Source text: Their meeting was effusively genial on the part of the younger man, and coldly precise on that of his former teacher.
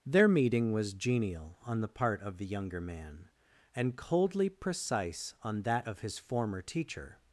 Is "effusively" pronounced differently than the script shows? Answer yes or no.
yes